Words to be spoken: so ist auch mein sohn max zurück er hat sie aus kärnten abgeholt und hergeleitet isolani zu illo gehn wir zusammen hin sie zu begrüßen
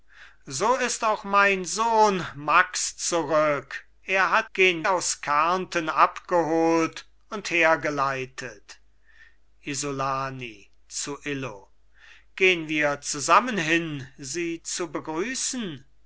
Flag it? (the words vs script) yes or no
yes